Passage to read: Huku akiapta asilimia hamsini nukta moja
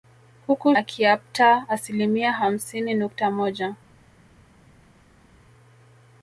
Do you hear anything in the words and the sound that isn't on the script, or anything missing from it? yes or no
no